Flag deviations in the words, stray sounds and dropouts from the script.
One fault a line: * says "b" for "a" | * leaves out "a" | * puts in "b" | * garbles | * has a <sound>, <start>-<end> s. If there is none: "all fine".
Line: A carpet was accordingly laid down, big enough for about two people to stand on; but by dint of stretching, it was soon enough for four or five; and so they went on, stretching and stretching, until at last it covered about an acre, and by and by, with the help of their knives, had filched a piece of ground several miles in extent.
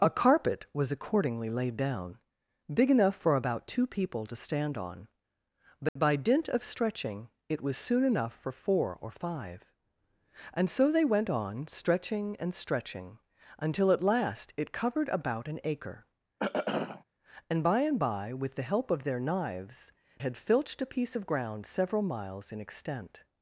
* has a dropout, 5.9-6.0 s
* has a throat clearing, 16.4-17.0 s